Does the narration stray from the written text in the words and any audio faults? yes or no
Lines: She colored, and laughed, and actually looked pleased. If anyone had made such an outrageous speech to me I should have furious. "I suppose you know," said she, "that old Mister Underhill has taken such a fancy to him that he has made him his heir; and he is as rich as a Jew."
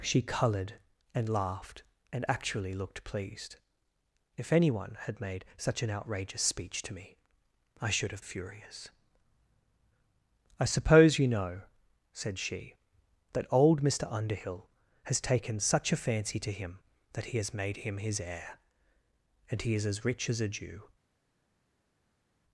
no